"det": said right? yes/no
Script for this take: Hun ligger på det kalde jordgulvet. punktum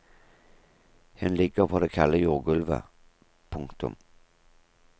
yes